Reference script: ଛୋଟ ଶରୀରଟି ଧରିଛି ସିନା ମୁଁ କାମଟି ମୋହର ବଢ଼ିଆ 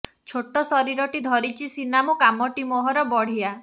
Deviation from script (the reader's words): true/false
false